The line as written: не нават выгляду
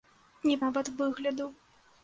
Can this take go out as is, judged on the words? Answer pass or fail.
pass